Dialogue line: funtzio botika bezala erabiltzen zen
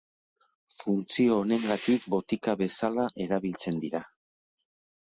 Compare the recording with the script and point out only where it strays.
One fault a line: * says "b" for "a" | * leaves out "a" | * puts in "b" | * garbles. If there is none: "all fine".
* puts in "honengatik"
* says "dira" for "zen"